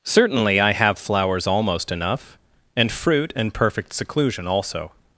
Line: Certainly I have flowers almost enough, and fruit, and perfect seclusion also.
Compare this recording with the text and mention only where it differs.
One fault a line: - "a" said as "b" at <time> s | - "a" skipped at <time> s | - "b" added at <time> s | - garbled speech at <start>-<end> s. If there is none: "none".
none